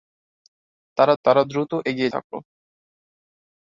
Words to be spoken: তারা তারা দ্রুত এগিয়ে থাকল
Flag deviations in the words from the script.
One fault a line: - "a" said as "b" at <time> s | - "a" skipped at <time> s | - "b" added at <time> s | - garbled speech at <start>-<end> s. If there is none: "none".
none